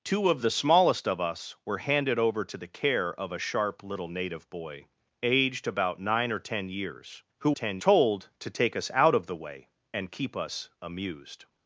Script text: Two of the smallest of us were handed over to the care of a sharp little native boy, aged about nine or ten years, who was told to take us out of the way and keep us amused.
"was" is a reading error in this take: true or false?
true